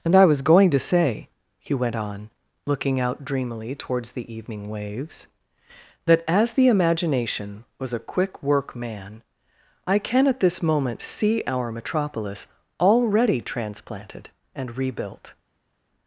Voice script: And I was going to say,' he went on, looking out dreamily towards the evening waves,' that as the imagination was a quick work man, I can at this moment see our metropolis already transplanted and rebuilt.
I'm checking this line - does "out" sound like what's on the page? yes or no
yes